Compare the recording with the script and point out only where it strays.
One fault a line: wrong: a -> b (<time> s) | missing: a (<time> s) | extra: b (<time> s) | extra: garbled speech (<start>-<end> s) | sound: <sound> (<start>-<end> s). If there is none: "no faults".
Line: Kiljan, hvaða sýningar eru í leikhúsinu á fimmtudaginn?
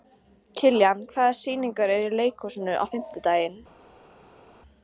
no faults